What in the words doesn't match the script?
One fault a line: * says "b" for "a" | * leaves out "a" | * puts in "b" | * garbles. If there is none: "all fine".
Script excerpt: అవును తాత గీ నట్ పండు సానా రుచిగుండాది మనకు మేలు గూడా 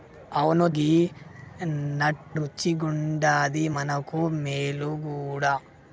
* leaves out "తాత"
* leaves out "పండు సానా"